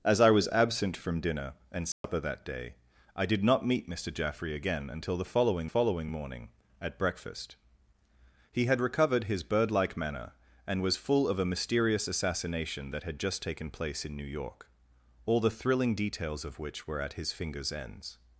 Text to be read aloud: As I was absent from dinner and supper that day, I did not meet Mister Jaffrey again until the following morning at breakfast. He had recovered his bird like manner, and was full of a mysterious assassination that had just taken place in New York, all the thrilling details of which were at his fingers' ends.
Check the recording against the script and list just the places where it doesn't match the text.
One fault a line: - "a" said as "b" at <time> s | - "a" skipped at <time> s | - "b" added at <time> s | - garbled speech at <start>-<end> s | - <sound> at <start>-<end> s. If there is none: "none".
- dropout at 1.9-2.0 s
- "following" added at 5.6 s